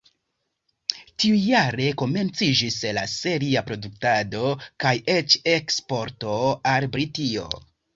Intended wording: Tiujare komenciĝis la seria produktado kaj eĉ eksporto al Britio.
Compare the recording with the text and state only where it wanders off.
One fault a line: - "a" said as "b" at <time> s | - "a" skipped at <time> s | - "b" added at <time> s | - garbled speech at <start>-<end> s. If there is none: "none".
none